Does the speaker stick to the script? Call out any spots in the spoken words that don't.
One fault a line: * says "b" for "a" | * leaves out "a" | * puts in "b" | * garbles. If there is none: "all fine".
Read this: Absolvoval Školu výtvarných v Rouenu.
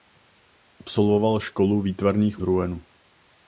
all fine